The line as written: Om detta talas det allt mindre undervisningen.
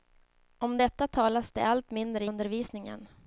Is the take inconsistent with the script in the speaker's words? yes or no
no